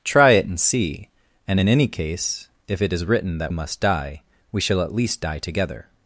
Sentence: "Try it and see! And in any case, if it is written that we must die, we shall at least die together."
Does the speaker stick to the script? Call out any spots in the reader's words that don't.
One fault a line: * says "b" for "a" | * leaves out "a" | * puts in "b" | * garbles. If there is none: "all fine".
* leaves out "we"